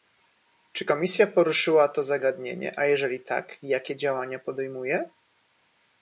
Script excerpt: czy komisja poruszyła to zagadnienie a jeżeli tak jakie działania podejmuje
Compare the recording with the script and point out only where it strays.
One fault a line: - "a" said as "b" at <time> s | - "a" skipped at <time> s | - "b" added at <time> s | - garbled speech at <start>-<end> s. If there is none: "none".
none